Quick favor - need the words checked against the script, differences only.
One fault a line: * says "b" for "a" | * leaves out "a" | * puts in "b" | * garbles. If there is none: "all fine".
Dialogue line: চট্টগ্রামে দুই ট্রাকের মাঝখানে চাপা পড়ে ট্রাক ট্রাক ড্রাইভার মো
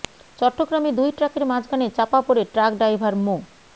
* leaves out "ট্রাক"